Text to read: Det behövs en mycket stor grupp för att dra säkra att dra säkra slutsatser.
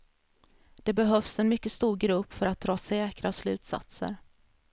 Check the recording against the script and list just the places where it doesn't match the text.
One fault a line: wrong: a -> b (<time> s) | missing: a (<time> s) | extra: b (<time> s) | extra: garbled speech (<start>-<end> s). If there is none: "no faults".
missing: att dra säkra (3.3 s)